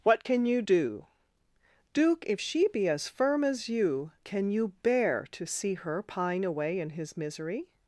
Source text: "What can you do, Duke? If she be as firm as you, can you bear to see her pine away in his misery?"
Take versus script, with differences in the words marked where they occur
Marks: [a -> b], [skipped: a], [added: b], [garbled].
"What can you do, Duke? If she be as firm as you, can you bear to see her pine away in his misery?"